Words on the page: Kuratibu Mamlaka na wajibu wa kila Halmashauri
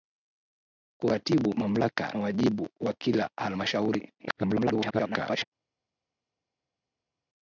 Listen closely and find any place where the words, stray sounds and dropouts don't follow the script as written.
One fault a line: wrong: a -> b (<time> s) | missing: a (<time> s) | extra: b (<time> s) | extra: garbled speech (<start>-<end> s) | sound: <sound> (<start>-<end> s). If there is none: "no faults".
missing: na (2.1 s)
extra: garbled speech (4.2-5.4 s)